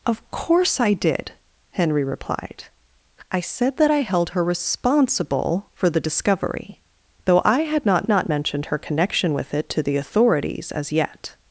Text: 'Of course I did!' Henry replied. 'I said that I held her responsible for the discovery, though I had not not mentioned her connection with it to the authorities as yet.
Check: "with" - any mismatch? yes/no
no